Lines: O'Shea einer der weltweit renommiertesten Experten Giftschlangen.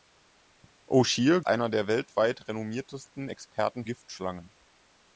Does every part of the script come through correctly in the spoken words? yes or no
yes